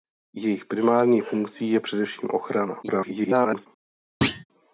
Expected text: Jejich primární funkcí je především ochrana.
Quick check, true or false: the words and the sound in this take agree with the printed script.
false